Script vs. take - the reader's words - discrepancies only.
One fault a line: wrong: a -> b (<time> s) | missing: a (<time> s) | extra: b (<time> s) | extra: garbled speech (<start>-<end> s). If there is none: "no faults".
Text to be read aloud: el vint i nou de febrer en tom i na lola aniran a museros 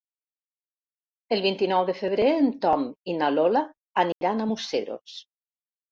no faults